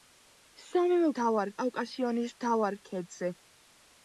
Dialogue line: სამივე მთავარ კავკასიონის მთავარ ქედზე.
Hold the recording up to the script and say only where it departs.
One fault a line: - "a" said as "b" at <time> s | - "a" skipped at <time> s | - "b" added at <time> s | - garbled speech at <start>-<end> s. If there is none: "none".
none